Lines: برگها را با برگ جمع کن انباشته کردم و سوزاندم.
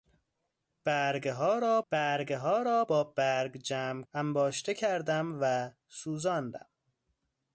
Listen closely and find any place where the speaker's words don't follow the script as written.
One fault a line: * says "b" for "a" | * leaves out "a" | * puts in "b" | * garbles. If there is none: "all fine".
* puts in "برگها را"
* leaves out "کن"